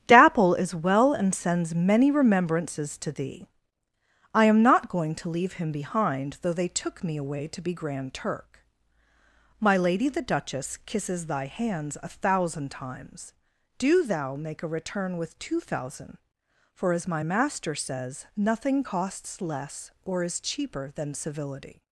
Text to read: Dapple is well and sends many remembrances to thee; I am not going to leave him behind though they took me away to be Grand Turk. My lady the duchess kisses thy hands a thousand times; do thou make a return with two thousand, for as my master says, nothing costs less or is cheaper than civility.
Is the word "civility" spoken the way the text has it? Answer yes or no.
yes